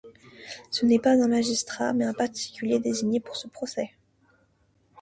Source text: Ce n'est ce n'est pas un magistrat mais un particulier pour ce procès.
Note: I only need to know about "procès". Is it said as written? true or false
true